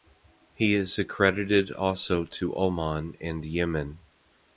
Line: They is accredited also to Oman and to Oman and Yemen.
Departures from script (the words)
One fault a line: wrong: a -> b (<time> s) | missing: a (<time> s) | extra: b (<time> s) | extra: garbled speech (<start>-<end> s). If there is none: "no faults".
wrong: They -> He (0.6 s)
missing: to Oman and (3.5 s)